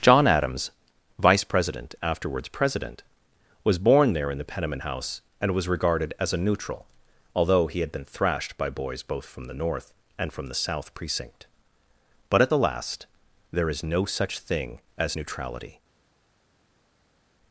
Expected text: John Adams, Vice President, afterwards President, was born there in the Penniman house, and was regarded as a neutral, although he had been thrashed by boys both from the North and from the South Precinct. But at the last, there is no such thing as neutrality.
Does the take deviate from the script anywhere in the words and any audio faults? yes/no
no